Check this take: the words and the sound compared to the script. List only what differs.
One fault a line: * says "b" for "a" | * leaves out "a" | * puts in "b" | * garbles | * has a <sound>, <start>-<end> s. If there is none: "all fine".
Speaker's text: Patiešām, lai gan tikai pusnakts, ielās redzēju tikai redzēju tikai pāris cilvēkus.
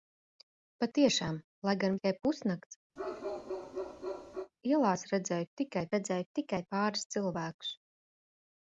* has a bark, 3.0-4.5 s